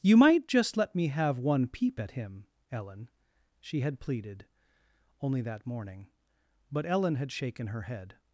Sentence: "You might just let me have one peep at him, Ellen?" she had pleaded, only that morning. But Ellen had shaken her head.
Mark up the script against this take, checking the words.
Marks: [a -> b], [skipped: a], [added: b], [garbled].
"You might just let me have one peep at him, Ellen?" she had pleaded, only that morning. But Ellen had shaken her head.